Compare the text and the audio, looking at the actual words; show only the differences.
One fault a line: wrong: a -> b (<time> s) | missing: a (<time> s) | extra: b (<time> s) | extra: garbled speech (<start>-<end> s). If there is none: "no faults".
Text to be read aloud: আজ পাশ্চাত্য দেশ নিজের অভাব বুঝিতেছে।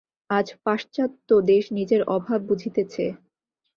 no faults